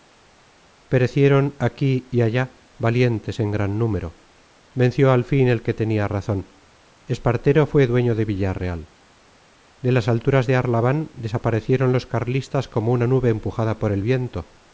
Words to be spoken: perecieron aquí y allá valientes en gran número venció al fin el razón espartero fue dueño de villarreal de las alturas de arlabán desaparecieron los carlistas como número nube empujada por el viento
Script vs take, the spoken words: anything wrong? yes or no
yes